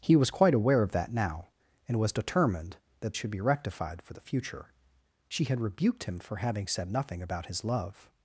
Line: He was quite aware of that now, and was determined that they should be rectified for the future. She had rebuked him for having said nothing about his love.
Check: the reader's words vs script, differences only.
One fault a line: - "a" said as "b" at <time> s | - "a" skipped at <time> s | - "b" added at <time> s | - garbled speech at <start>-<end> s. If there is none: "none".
- "they" skipped at 3.2 s